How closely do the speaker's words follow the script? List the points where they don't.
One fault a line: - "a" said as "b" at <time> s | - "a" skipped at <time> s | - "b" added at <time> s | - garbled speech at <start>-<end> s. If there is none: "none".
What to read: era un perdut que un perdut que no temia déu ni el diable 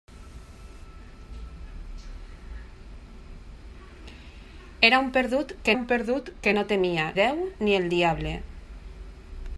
none